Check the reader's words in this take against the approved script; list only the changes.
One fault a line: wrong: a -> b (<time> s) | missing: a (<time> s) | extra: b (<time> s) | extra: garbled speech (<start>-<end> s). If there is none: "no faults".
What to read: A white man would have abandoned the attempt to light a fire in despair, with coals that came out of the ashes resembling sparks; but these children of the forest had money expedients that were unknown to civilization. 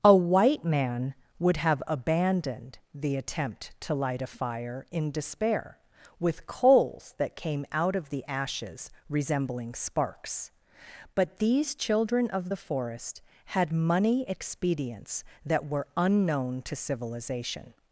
no faults